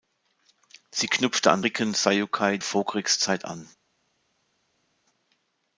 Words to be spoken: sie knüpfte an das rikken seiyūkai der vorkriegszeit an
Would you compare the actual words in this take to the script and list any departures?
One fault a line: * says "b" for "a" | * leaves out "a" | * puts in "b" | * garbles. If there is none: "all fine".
* leaves out "das"
* leaves out "der"